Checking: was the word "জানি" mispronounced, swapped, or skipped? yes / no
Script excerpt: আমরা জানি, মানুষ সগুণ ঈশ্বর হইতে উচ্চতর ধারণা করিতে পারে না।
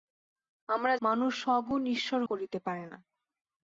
yes